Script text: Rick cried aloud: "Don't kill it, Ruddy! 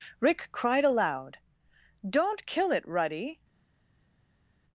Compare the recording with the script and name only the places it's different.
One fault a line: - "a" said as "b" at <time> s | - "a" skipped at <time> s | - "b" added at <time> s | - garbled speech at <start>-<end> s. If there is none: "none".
none